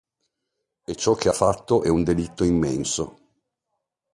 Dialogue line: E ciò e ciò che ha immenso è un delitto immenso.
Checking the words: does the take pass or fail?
fail